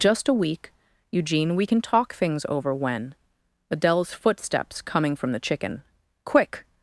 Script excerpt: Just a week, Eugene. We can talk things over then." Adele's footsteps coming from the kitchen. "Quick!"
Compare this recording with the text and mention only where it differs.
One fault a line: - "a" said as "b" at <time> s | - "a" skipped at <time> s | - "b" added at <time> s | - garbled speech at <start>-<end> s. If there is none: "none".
- "then" said as "when" at 2.7 s
- "kitchen" said as "chicken" at 5.4 s